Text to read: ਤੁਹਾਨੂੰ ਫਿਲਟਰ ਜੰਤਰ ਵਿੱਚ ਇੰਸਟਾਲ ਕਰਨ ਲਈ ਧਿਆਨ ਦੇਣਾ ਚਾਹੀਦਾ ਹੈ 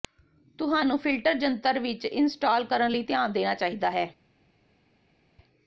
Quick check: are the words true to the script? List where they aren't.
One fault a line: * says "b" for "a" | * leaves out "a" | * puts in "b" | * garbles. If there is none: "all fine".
all fine